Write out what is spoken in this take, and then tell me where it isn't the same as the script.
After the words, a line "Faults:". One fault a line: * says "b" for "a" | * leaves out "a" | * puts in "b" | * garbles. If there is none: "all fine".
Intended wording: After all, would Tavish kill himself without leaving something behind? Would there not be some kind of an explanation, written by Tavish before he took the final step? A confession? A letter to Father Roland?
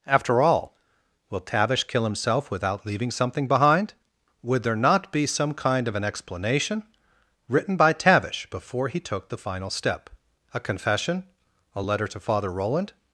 After all, will Tavish kill himself without leaving something behind? Would there not be some kind of an explanation, written by Tavish before he took the final step? A confession? A letter to Father Roland?
Faults:
* says "will" for "would"